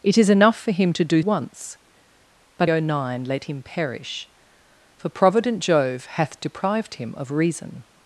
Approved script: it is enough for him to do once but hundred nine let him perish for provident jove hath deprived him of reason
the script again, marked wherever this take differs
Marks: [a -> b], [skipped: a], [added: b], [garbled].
it is enough for him to do once but hundred nine let him perish for provident jove hath deprived him of reason